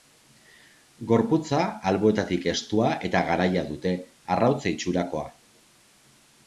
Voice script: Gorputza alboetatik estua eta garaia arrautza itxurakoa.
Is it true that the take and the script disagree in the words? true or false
true